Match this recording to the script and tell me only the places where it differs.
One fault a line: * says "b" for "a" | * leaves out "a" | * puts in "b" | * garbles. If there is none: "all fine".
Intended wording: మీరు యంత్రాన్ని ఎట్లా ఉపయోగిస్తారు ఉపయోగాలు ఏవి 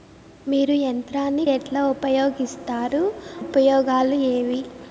all fine